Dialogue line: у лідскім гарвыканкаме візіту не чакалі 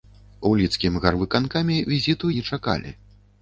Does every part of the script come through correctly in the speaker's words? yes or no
yes